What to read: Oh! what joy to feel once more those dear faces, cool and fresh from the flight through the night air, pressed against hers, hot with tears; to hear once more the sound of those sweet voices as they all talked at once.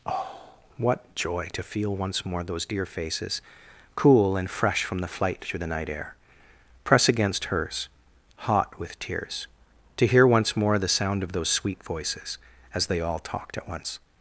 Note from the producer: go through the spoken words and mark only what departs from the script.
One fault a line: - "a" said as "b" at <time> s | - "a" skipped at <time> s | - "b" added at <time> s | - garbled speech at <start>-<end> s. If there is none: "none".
- "pressed" said as "press" at 6.8 s